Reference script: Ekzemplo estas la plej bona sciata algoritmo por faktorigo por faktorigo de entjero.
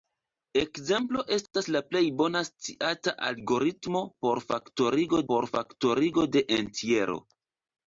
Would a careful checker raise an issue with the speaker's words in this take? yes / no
no